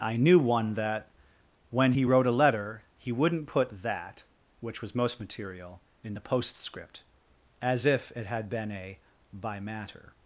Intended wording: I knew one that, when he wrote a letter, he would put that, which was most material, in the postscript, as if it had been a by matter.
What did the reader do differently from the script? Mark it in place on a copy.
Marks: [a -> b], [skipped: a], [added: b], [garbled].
I knew one that, when he wrote a letter, he [would -> wouldn't] put that, which was most material, in the postscript, as if it had been a by matter.